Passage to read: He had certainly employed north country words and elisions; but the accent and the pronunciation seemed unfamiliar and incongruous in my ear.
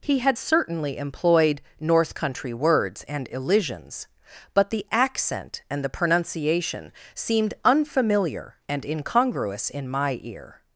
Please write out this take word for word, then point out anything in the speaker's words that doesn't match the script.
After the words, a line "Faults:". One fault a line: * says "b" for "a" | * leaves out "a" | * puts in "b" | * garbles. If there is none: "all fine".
He had certainly employed north country words and elisions; but the accent and the pronunciation seemed unfamiliar and incongruous in my ear.
Faults:
all fine